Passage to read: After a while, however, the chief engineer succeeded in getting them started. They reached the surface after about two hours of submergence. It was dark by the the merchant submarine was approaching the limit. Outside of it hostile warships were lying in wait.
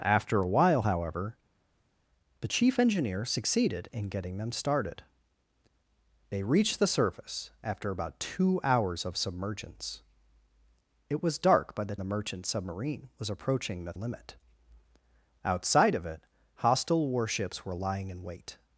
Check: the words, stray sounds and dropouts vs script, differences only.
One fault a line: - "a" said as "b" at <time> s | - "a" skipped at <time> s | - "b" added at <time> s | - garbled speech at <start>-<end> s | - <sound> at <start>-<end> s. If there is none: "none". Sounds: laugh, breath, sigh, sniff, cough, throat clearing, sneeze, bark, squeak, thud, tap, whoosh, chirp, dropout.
none